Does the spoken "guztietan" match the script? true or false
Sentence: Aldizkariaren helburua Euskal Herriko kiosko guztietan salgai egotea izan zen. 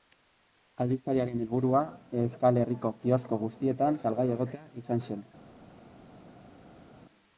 true